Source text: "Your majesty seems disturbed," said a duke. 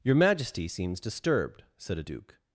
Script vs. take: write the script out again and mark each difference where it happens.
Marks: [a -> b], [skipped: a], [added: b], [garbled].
"Your majesty seems disturbed," said a duke.